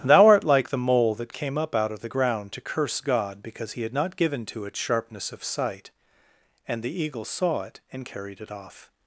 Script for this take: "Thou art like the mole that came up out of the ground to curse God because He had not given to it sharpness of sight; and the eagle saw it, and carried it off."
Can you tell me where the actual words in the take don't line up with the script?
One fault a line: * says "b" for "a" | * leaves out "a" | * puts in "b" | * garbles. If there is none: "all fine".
all fine